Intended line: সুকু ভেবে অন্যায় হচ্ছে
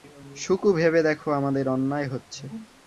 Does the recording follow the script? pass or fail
fail